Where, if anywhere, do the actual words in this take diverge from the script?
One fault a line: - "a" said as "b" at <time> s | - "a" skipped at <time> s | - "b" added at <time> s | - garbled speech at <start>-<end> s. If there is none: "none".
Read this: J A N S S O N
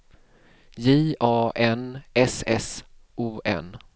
none